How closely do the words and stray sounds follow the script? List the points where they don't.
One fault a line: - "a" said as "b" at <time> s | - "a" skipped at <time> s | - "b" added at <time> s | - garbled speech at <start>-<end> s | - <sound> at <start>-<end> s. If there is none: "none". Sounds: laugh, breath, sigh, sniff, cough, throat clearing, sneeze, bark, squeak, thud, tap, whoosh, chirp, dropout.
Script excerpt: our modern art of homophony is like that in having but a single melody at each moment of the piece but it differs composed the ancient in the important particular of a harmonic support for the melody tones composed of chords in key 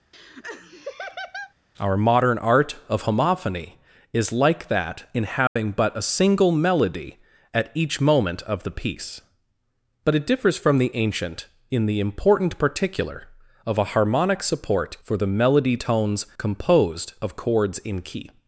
- laugh at 0.1-1.5 s
- dropout at 5.5-5.6 s
- "composed" said as "from" at 10.6 s